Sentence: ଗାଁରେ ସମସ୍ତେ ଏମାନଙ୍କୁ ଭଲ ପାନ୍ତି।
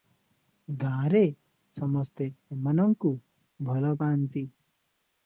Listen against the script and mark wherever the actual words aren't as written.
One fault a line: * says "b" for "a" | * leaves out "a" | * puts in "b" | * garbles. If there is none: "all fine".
all fine